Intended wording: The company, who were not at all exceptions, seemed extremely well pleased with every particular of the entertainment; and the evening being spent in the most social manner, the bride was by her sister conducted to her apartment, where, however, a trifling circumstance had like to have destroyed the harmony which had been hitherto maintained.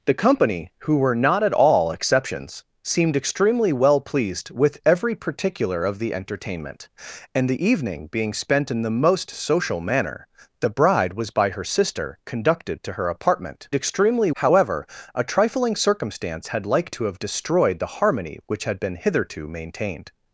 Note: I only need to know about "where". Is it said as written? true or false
false